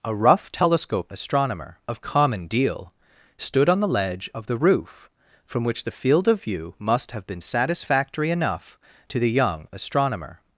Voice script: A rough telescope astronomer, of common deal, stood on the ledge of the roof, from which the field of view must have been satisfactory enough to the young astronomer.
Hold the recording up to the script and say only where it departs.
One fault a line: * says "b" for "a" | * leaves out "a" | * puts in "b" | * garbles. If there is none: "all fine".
all fine